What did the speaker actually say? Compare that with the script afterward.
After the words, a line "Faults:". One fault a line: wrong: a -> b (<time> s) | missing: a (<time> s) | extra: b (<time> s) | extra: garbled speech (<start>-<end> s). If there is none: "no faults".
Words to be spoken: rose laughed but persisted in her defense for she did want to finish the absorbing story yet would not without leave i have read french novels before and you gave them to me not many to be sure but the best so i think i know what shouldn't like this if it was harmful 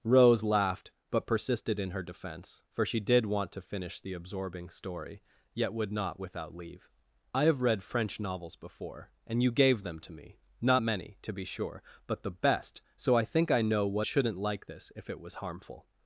rose laughed but persisted in her defense for she did want to finish the absorbing story yet would not without leave i have read french novels before and you gave them to me not many to be sure but the best so i think i know what shouldn't like this if it was harmful
Faults:
no faults